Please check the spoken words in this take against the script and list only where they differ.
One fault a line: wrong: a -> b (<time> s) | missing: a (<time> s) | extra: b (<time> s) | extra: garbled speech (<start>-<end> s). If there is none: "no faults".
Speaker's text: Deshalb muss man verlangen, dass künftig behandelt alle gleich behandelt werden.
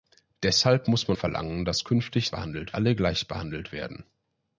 no faults